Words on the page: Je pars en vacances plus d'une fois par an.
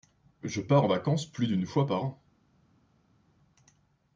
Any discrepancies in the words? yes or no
no